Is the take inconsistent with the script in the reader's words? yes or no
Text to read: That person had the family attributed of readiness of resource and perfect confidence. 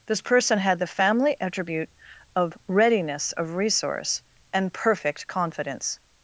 yes